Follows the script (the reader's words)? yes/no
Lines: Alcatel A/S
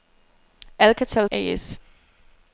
yes